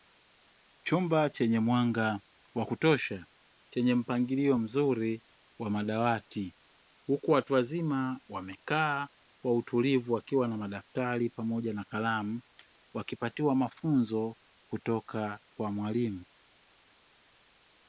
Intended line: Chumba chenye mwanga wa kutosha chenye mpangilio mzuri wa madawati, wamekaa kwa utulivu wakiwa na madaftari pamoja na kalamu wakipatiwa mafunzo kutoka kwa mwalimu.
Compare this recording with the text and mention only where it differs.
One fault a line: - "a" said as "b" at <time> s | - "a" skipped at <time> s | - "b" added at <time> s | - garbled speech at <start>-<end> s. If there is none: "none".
- "huku watu wazima" added at 7.1 s